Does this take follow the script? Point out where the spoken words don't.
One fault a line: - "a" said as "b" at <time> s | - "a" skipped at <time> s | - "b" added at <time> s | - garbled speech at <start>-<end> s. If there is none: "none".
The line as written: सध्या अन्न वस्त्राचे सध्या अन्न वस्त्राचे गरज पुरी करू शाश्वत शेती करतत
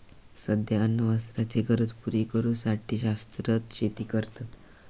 - "सध्या अन्न वस्त्राचे" skipped at 1.6 s
- "साठी" added at 2.6 s